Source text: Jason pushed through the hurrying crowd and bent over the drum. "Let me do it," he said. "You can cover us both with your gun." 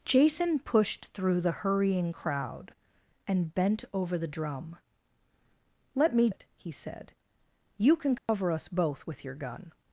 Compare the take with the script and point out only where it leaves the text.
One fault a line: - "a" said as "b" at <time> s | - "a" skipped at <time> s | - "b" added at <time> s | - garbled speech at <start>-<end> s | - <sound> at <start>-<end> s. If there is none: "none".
- "do" skipped at 6.3 s
- dropout at 8.2-8.3 s